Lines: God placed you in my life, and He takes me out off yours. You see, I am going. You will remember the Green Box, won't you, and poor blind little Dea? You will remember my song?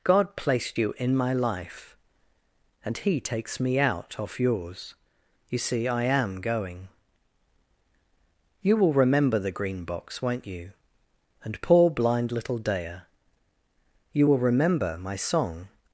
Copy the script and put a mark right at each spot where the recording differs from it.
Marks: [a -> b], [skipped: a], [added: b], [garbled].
God placed you in my life, and He takes me out off yours. You see, I am going. You will remember the Green Box, won't you, and poor blind little Dea? You will remember my song?